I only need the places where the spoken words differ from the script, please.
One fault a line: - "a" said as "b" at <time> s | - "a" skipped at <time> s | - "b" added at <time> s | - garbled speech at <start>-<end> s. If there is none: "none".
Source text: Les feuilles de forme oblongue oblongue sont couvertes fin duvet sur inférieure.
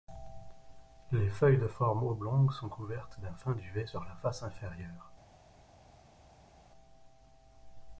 - "oblongue" skipped at 2.5 s
- "d'un" added at 3.2 s
- "la face" added at 4.0 s